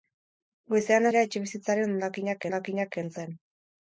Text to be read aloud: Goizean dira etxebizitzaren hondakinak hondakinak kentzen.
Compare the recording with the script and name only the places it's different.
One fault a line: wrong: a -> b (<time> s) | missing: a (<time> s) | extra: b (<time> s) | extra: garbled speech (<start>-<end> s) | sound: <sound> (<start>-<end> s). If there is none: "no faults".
no faults